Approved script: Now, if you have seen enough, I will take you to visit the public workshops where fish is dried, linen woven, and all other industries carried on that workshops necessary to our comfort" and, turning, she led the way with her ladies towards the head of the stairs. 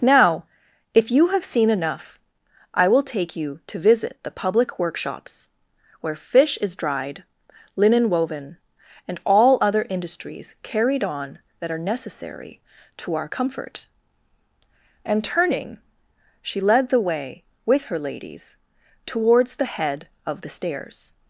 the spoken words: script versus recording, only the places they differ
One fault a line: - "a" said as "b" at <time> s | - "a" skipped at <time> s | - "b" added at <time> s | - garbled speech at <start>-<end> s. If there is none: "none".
- "workshops" said as "are" at 11.7 s